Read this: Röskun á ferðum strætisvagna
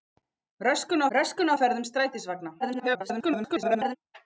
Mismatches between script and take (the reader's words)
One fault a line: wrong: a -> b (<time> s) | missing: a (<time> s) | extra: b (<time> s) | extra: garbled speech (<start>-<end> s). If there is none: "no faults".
extra: röskun (1.2 s)
extra: garbled speech (2.6-4.0 s)